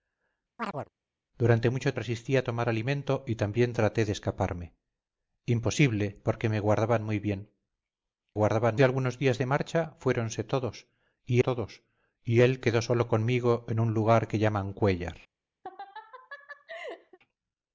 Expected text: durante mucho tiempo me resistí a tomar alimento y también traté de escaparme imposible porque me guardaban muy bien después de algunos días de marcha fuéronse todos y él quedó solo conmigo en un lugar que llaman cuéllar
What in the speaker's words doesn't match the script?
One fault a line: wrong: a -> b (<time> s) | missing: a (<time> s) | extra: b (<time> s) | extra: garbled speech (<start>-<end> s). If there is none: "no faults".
missing: tiempo me (1.9 s)
wrong: después -> guardaban (8.3 s)
extra: todos y (11.4 s)